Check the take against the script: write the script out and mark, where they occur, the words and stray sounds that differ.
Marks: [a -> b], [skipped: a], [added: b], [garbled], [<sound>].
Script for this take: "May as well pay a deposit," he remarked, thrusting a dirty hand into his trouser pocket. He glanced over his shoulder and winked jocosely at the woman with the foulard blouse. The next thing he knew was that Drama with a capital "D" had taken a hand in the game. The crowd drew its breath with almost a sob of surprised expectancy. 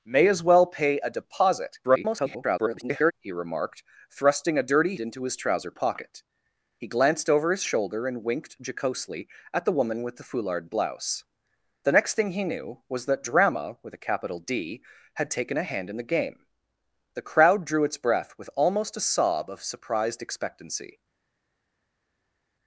"May as well pay a deposit," [garbled] he remarked, thrusting a dirty [skipped: hand] into his trouser pocket. He glanced over his shoulder and winked jocosely at the woman with the foulard blouse. The next thing he knew was that Drama with a capital "D" had taken a hand in the game. The crowd drew its breath with almost a sob of surprised expectancy.